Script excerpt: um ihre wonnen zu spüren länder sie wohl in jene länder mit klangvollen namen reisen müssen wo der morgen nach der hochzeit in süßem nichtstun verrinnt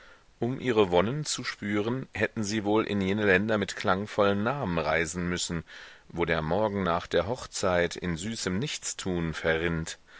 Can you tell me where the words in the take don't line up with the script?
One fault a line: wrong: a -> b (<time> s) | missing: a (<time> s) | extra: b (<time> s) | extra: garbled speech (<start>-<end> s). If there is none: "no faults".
wrong: länder -> hätten (2.1 s)